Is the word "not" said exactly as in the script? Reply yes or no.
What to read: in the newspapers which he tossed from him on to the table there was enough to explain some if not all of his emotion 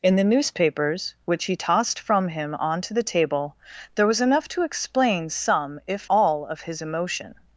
no